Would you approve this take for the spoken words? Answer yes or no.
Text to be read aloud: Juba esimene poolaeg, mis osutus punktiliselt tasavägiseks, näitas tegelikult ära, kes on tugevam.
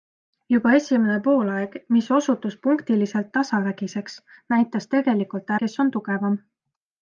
no